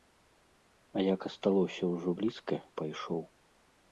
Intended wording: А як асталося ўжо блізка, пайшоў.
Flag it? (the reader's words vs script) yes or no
no